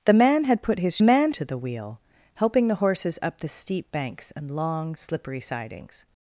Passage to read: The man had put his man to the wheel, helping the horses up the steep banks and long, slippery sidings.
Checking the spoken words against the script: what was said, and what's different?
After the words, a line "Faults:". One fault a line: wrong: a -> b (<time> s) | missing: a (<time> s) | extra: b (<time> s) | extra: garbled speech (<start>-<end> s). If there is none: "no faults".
The man had put his man to the wheel, helping the horses up the steep banks and long, slippery sidings.
Faults:
no faults